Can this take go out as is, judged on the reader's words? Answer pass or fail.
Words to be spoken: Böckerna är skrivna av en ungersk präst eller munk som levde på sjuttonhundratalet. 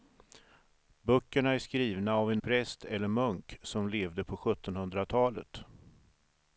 fail